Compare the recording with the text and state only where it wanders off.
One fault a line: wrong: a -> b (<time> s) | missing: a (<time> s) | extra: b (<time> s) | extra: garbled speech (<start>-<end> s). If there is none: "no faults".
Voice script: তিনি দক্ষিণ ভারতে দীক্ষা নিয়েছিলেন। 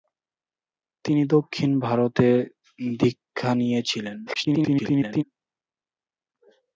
extra: garbled speech (4.3-5.2 s)